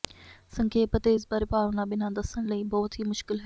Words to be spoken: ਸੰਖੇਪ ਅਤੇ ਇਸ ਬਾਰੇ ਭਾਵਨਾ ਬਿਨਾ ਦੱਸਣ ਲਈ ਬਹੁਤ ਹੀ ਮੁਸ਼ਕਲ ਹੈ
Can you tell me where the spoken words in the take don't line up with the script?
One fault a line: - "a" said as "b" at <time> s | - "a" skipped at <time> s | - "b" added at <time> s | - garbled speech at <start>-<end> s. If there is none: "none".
none